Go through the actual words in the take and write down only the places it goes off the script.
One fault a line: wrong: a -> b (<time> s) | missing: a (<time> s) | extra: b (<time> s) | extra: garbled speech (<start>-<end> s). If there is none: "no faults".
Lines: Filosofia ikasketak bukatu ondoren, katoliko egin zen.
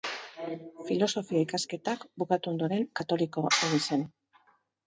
no faults